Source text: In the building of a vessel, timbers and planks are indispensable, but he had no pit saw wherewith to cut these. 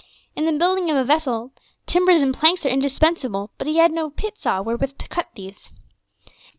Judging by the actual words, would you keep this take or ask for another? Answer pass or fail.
pass